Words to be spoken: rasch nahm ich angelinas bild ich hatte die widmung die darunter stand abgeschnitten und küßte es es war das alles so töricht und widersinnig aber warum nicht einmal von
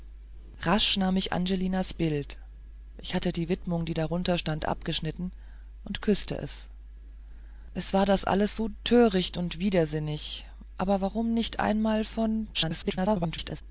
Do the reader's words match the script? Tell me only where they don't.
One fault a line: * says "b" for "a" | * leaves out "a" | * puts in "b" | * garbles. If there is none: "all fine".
* garbles